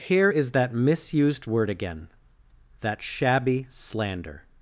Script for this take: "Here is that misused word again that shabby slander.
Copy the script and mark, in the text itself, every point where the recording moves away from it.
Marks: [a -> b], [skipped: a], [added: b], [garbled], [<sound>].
"Here is that misused word again that shabby slander.